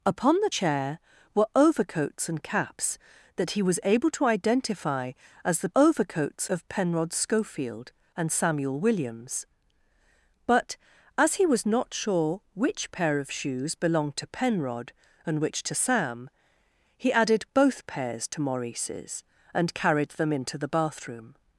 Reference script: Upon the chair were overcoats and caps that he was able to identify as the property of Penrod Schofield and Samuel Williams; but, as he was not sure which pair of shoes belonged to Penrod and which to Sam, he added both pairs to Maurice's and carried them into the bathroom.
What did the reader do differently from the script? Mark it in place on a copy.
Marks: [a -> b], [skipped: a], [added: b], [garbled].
Upon the chair were overcoats and caps that he was able to identify as the [property -> overcoats] of Penrod Schofield and Samuel Williams; but, as he was not sure which pair of shoes belonged to Penrod and which to Sam, he added both pairs to Maurice's and carried them into the bathroom.